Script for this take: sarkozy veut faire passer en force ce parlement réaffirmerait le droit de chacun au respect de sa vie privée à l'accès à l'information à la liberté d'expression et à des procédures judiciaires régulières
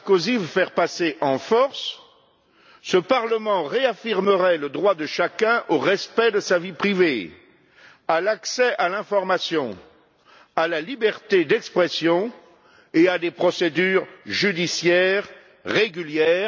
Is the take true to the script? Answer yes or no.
yes